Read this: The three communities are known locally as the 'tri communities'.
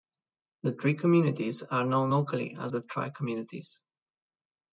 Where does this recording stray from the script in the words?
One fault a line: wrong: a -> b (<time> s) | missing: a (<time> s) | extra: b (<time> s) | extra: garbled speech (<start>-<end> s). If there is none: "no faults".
no faults